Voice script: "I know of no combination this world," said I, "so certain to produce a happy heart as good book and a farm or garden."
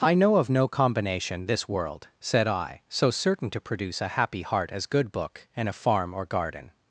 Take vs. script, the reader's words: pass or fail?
pass